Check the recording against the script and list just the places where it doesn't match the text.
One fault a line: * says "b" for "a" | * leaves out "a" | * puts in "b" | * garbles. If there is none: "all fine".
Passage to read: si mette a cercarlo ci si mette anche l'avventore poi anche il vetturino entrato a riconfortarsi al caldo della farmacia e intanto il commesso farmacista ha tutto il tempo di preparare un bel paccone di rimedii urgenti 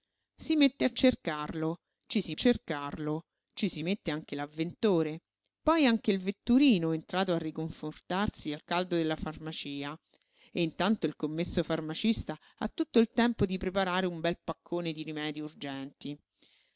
* puts in "cercarlo ci si"